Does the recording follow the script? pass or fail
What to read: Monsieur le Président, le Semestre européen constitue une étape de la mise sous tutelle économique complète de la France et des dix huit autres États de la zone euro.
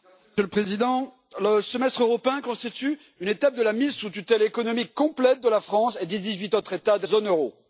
fail